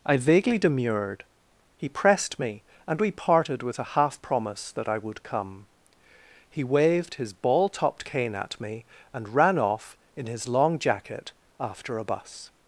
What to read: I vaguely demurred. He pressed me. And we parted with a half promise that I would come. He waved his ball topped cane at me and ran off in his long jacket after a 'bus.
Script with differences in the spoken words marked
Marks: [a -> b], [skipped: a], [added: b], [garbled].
I vaguely demurred. He pressed me. And we parted with a half promise that I would come. He waved his ball topped cane at me and ran off in his long jacket after a 'bus.